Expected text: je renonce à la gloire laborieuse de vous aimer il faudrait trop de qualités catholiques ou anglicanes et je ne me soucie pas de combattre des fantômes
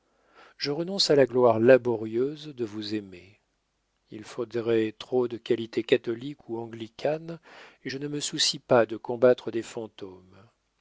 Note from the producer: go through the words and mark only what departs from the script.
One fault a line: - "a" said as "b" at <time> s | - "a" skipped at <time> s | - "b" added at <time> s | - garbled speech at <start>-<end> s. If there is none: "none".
none